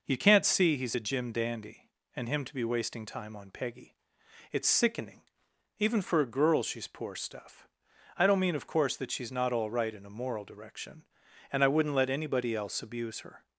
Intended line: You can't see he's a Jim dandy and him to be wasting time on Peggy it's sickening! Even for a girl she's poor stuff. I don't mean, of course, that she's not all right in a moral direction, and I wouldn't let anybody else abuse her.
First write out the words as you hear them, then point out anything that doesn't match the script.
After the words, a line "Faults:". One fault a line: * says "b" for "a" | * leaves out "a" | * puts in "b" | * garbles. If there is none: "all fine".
You can't see he's a Jim dandy and him to be wasting time on Peggy it's sickening! Even for a girl she's poor stuff. I don't mean, of course, that she's not all right in a moral direction, and I wouldn't let anybody else abuse her.
Faults:
all fine